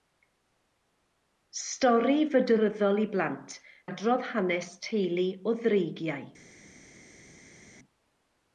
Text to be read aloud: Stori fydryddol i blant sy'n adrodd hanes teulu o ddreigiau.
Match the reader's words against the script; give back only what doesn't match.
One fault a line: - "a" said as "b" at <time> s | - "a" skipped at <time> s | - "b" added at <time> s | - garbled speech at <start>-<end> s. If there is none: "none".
- "sy'n" skipped at 3.6 s